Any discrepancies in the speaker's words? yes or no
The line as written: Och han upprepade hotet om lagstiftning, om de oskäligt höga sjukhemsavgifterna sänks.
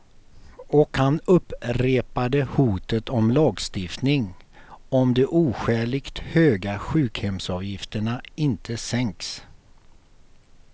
yes